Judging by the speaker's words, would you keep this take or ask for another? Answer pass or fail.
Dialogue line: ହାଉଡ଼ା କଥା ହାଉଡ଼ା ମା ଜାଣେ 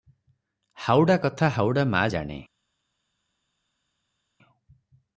pass